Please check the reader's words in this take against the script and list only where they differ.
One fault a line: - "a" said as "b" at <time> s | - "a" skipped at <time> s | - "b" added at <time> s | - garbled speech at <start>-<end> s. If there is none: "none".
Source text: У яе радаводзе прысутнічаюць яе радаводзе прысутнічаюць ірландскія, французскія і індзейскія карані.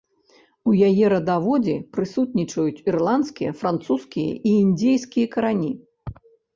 - "яе радаводзе прысутнічаюць" skipped at 2.8 s